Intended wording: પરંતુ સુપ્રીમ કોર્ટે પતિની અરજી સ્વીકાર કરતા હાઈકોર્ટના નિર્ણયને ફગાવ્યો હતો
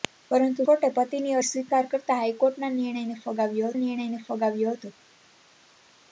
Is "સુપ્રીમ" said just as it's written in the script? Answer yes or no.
no